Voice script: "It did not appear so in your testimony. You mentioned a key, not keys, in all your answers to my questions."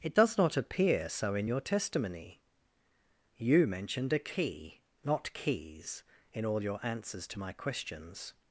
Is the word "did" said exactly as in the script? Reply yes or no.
no